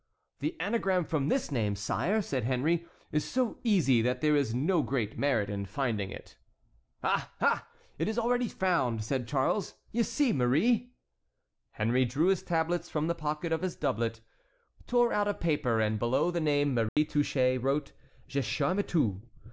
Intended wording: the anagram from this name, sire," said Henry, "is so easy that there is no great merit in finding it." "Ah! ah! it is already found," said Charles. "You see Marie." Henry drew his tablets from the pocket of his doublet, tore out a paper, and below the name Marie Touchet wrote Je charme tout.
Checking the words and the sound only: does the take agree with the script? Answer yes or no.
no